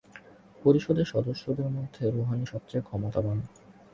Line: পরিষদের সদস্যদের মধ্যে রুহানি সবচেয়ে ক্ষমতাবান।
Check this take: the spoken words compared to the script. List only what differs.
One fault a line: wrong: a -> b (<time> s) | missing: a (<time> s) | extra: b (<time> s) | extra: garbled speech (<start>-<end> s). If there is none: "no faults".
no faults